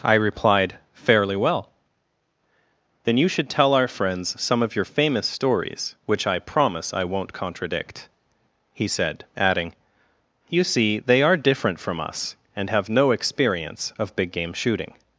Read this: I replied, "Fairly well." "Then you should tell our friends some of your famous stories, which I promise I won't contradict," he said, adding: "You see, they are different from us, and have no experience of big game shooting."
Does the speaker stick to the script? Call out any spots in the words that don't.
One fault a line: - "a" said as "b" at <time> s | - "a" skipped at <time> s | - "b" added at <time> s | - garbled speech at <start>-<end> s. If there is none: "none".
none